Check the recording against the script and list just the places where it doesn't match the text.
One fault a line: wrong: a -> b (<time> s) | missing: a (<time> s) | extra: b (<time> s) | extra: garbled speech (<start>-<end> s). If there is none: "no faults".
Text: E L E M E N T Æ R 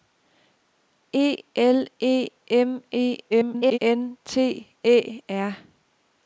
extra: garbled speech (3.3-3.8 s)